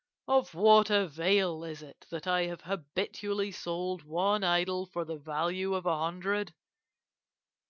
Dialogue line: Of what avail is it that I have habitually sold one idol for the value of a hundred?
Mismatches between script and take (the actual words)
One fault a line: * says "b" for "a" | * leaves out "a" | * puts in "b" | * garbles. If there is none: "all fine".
all fine